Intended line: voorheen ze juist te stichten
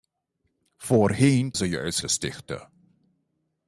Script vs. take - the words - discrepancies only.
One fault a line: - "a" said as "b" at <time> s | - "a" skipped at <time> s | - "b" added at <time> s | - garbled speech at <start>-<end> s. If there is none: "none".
none